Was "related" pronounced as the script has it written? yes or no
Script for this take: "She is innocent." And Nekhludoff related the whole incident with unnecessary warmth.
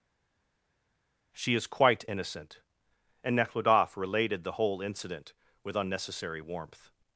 yes